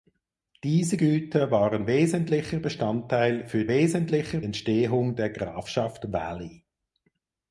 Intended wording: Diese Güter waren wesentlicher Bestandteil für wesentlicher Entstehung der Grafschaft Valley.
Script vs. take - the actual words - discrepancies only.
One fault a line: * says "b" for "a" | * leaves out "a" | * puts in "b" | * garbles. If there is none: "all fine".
all fine